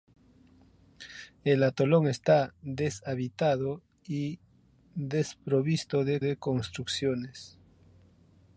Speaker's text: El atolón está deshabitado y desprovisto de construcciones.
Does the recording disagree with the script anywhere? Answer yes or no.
yes